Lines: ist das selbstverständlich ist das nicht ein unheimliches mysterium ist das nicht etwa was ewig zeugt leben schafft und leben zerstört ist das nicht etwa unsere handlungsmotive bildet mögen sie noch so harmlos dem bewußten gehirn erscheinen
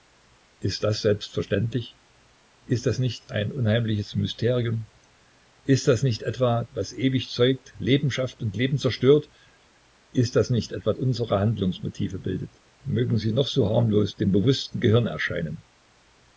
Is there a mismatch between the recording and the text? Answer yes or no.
no